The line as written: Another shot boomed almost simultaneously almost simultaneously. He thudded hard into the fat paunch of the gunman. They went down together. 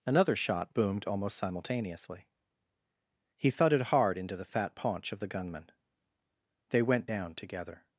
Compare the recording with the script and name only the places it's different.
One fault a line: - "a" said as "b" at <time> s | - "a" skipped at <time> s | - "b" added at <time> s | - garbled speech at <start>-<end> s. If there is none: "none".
- "almost simultaneously" skipped at 2.3 s